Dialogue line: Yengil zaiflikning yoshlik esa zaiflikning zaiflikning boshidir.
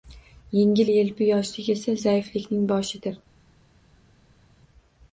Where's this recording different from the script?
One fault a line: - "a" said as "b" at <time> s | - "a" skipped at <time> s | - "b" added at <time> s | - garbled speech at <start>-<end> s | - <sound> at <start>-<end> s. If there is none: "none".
- "zaiflikning" said as "yelpi" at 0.9 s
- "zaiflikning" skipped at 2.7 s